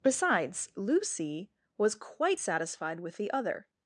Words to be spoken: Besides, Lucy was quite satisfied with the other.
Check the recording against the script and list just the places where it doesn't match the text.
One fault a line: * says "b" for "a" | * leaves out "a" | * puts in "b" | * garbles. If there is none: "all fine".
all fine